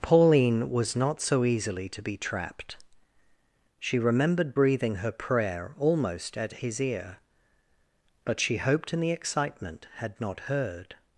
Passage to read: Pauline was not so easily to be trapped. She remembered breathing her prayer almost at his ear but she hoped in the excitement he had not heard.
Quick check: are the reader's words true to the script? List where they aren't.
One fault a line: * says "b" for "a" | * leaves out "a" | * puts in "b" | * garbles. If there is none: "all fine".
* leaves out "he"